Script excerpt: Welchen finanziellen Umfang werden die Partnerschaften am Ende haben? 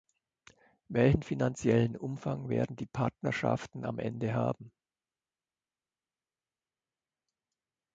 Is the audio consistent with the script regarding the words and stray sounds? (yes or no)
yes